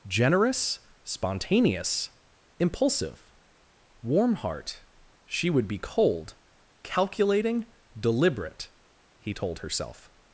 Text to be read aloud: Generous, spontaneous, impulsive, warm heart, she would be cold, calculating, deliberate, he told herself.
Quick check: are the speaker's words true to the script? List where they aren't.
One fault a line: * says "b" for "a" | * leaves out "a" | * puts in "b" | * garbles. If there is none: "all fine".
all fine